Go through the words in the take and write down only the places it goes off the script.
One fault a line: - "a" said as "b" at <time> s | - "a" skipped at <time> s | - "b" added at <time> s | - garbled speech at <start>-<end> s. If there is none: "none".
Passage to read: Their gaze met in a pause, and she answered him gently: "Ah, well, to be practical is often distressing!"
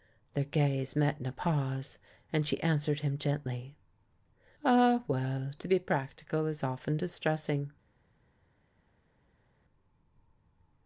none